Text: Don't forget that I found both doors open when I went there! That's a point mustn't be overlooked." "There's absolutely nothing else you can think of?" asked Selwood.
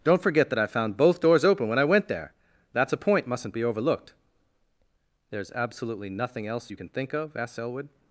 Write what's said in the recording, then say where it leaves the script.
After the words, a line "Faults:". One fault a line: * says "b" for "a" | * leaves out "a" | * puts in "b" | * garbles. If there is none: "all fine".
Don't forget that I found both doors open when I went there! That's a point mustn't be overlooked." "There's absolutely nothing else you can think of?" asked Selwood.
Faults:
all fine